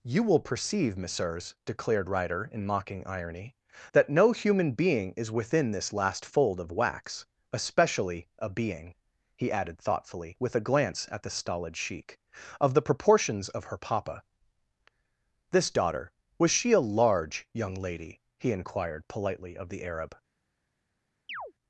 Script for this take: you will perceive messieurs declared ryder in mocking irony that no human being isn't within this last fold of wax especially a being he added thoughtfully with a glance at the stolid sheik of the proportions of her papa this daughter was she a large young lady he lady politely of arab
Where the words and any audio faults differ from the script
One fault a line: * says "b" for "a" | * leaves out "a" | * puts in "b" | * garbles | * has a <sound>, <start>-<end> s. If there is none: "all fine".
* says "is" for "isn't"
* says "inquired" for "lady"
* puts in "the"
* has a chirp, 21.3-21.5 s